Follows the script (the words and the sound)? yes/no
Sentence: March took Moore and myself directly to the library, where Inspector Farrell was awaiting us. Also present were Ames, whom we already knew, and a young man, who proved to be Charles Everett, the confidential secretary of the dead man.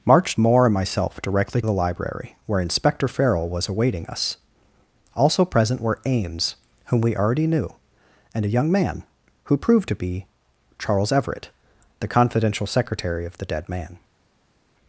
no